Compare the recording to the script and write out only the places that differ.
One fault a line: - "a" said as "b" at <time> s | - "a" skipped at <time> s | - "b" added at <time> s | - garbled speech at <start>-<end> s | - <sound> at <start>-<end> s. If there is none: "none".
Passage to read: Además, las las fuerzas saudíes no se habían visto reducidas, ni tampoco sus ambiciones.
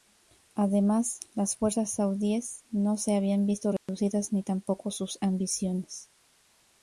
- "las" skipped at 1.6 s
- dropout at 3.8-3.9 s